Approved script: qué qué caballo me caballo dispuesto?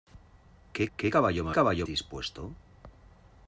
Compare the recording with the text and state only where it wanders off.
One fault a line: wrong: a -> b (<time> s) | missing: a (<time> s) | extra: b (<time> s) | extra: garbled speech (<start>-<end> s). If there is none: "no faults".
no faults